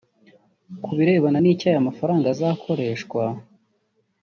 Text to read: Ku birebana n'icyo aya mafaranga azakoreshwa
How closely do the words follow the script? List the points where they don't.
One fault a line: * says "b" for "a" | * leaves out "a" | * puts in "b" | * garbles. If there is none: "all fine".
all fine